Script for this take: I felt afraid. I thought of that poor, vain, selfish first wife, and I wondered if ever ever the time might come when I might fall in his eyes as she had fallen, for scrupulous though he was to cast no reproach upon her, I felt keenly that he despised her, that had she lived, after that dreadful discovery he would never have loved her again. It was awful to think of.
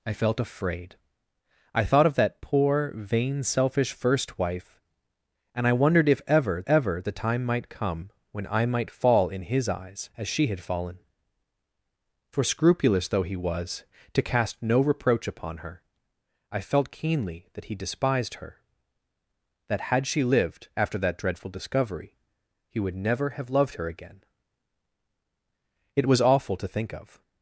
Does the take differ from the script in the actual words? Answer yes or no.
no